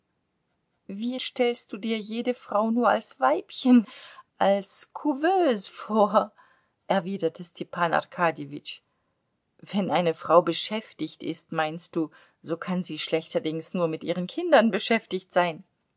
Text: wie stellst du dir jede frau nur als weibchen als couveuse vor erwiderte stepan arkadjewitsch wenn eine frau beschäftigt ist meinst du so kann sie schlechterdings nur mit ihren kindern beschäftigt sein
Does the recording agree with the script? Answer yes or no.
yes